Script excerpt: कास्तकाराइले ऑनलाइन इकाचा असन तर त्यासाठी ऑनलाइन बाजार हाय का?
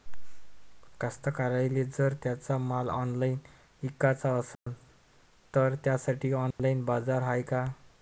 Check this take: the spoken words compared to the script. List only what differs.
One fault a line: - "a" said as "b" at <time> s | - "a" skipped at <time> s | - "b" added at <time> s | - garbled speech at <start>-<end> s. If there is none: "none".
- "जर त्यांचा माल" added at 1.9 s